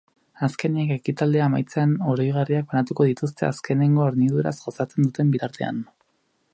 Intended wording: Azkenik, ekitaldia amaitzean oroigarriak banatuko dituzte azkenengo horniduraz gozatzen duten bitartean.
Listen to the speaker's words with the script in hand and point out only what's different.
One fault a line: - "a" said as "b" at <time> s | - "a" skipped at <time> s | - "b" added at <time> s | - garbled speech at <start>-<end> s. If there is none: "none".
none